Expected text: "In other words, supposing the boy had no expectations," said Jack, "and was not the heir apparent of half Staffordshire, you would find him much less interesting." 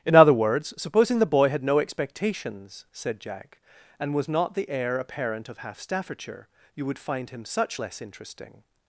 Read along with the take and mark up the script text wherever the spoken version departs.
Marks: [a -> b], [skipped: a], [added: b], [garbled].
"In other words, supposing the boy had no expectations," said Jack, "and was not the heir apparent of half Staffordshire, you would find him [much -> such] less interesting."